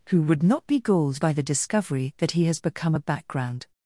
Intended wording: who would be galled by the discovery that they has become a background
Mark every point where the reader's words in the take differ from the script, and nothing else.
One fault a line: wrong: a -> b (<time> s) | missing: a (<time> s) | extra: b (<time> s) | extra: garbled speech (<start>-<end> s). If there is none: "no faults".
extra: not (0.4 s)
wrong: they -> he (2.3 s)